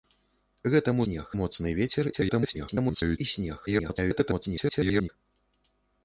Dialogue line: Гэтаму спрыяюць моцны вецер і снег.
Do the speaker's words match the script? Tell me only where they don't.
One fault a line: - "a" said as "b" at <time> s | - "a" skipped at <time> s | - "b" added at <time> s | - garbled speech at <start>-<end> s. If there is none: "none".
- "спрыяюць" said as "снег" at 1.0 s
- garbled speech at 2.1-3.2 s
- garbled speech at 3.7-5.1 s